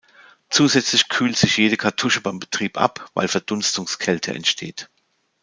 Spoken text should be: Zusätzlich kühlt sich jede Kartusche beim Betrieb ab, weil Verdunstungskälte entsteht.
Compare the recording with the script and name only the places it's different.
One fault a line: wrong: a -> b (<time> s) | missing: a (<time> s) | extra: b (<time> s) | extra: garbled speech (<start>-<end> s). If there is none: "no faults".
no faults